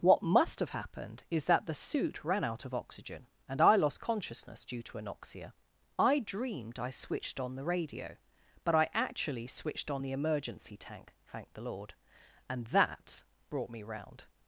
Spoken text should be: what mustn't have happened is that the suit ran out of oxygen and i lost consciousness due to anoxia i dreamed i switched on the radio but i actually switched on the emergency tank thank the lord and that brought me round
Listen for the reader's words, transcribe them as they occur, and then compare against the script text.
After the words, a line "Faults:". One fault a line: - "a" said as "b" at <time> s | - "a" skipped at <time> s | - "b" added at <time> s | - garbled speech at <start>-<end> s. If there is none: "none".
what must have happened is that the suit ran out of oxygen and i lost consciousness due to anoxia i dreamed i switched on the radio but i actually switched on the emergency tank thank the lord and that brought me round
Faults:
- "mustn't" said as "must" at 0.2 s